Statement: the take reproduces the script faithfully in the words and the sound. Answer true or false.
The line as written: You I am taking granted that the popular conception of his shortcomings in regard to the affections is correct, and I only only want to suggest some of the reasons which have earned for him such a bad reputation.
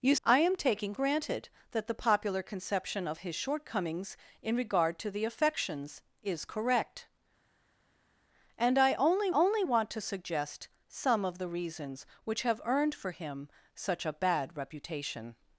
true